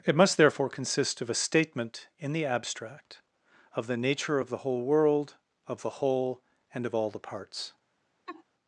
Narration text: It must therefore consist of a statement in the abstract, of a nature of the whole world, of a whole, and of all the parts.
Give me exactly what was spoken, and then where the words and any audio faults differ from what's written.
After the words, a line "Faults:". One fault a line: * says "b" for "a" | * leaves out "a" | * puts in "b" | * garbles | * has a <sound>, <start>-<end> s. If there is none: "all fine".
It must therefore consist of a statement in the abstract, of the nature of the whole world, of the whole, and of all the parts.
Faults:
* says "the" for "a"
* says "the" for "a"
* has a laugh, 8.3-8.4 s